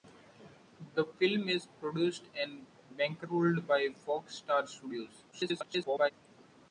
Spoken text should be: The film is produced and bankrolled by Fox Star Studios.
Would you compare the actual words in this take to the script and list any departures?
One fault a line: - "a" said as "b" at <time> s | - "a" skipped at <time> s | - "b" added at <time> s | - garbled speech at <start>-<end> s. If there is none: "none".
- garbled speech at 5.3-6.1 s